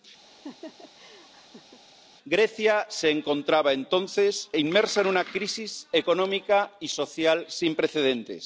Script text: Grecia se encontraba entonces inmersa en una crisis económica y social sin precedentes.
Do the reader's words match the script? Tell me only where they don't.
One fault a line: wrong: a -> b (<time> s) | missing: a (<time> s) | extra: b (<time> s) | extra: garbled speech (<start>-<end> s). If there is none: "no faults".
no faults